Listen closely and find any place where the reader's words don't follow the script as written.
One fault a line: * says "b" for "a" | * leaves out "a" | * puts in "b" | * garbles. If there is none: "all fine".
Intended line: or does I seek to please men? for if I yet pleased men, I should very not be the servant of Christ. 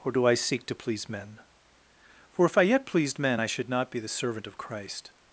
* says "do" for "does"
* leaves out "very"